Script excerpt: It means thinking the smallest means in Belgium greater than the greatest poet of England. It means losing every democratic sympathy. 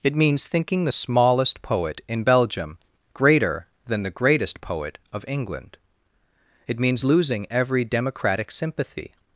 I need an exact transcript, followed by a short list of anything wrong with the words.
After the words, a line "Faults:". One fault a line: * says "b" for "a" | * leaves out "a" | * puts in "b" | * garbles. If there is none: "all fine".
It means thinking the smallest poet in Belgium greater than the greatest poet of England. It means losing every democratic sympathy.
Faults:
* says "poet" for "means"